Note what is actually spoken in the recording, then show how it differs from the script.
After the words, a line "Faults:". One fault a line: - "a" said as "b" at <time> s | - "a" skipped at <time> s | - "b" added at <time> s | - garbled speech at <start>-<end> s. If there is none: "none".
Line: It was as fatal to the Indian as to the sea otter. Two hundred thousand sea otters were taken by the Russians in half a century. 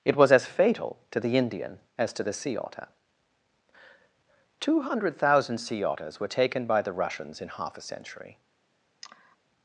It was as fatal to the Indian as to the sea otter. Two hundred thousand sea otters were taken by the Russians in half a century.
Faults:
none